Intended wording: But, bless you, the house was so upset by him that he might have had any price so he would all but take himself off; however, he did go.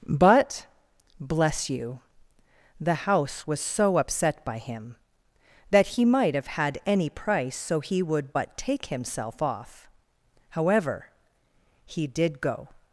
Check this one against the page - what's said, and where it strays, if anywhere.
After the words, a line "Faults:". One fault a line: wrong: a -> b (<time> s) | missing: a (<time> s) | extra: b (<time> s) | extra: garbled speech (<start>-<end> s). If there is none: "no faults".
But, bless you, the house was so upset by him that he might have had any price so he would but take himself off; however, he did go.
Faults:
missing: all (8.3 s)